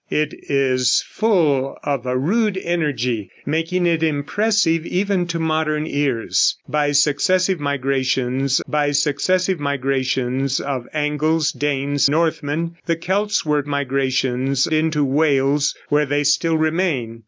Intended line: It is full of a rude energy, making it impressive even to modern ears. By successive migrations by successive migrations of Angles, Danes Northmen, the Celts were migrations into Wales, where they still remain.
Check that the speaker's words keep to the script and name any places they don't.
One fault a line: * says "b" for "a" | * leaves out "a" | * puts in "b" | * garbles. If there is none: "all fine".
all fine